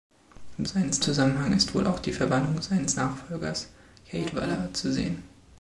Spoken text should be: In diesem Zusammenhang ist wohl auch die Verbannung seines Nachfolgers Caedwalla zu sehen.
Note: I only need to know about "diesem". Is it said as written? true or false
false